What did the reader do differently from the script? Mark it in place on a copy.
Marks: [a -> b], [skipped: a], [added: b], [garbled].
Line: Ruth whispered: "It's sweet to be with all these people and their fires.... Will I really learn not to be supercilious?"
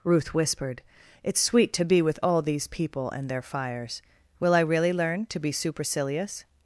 Ruth whispered: "It's sweet to be with all these people and their fires.... Will I really learn [skipped: not] to be supercilious?"